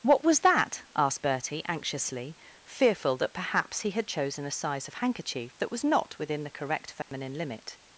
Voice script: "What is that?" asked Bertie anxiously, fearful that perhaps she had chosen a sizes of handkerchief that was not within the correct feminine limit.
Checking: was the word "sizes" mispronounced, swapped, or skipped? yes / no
yes